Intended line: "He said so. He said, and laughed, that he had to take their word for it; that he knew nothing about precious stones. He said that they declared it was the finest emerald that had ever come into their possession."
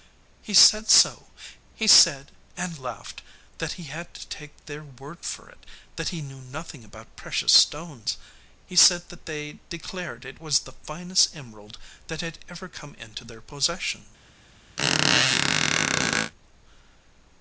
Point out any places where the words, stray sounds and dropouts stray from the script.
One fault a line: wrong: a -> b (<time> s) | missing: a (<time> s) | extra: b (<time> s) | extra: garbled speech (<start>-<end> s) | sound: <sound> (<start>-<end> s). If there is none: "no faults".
sound: squeak (14.8-16.3 s)